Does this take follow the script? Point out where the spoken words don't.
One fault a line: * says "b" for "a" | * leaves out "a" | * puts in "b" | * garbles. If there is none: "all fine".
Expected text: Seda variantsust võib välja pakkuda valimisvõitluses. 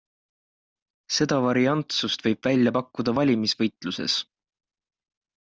all fine